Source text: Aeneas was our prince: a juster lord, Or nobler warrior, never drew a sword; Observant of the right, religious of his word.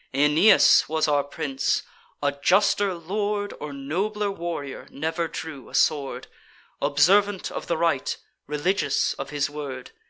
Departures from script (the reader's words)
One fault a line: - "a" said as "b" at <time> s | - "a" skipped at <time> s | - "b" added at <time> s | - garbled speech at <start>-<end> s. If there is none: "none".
none